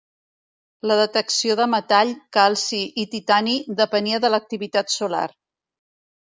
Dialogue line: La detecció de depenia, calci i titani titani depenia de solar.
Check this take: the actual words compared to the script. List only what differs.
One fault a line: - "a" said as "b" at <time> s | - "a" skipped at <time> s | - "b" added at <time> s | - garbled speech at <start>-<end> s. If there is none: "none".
- "depenia" said as "metall" at 1.7 s
- "titani" skipped at 3.5 s
- "l'activitat" added at 4.3 s